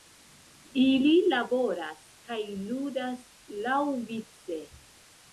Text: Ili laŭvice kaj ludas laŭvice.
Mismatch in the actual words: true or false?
true